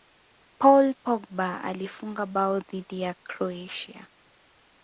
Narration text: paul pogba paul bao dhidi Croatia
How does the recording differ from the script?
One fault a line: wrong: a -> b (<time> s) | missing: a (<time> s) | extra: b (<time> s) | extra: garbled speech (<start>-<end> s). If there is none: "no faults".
wrong: paul -> alifunga (1.6 s)
extra: ya (3.0 s)